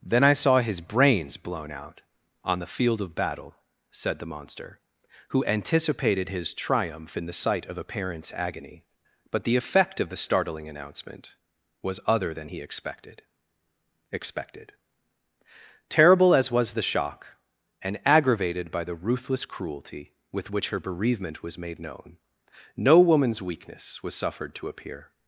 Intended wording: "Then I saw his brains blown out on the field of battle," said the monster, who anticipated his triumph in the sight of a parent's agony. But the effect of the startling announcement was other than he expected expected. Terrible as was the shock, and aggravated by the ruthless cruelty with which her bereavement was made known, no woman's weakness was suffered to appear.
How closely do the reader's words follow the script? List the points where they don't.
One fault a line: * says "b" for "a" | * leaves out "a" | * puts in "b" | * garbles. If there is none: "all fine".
all fine